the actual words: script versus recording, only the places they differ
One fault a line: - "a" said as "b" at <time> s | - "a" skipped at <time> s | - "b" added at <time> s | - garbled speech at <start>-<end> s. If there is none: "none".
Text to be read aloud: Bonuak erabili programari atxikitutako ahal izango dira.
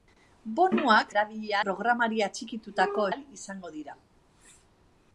none